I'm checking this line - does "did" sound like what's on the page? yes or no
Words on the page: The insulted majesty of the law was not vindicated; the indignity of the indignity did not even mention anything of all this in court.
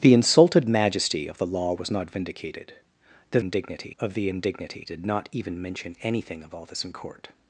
yes